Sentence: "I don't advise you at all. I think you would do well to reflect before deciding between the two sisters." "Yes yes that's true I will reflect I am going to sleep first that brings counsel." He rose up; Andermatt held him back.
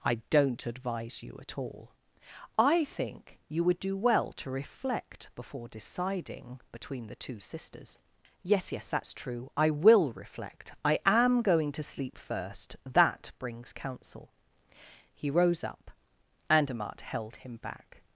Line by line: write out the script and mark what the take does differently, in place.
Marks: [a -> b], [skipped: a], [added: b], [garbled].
"I don't advise you at all. I think you would do well to reflect before deciding between the two sisters." "Yes yes that's true I will reflect I am going to sleep first that brings counsel." He rose up; Andermatt held him back.